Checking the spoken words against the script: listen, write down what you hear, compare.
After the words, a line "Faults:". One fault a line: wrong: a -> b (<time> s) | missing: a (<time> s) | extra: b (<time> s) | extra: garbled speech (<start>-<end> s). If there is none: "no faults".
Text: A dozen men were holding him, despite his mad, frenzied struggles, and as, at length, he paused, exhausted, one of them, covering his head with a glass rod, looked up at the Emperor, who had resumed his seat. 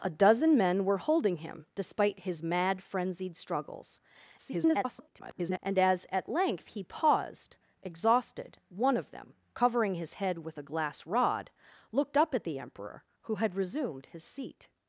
A dozen men were holding him, despite his mad, frenzied struggles, [garbled] and as, at length, he paused, exhausted, one of them, covering his head with a glass rod, looked up at the Emperor, who had resumed his seat.
Faults:
extra: garbled speech (4.4-5.6 s)